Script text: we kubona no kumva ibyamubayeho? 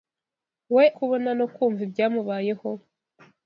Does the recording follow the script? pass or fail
pass